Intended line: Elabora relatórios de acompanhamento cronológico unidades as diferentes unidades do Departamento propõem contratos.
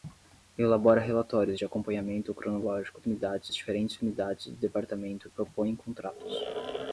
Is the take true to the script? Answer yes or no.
yes